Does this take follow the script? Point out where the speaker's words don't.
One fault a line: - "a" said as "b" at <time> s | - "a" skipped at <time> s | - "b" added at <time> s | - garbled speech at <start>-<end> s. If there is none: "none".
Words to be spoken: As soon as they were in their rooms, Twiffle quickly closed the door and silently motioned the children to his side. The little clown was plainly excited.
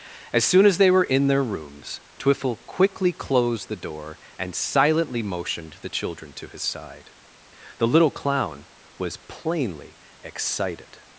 none